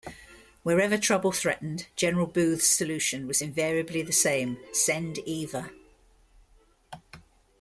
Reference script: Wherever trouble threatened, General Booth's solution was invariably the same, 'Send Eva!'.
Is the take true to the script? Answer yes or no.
yes